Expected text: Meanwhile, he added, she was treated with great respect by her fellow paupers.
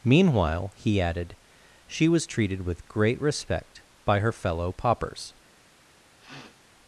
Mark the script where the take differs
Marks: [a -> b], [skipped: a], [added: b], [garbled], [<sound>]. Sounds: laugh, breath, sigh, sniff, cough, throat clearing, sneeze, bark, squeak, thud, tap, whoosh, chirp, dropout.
Meanwhile, he added, she was treated with great respect by her fellow paupers. [sniff]